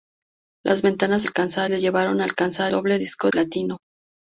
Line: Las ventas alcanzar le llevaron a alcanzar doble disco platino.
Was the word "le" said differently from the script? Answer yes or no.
no